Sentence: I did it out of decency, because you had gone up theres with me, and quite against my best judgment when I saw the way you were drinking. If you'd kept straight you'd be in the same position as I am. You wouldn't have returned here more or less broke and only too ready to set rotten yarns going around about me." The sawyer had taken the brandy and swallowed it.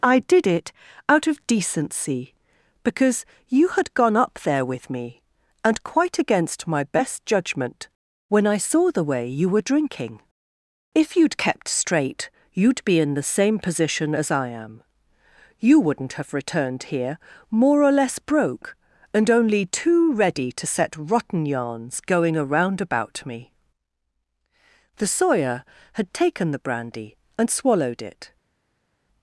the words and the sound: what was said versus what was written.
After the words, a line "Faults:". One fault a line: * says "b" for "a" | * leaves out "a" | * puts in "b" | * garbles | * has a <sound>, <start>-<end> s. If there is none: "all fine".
I did it out of decency, because you had gone up there with me, and quite against my best judgment when I saw the way you were drinking. If you'd kept straight you'd be in the same position as I am. You wouldn't have returned here more or less broke and only too ready to set rotten yarns going around about me." The sawyer had taken the brandy and swallowed it.
Faults:
* says "there" for "theres"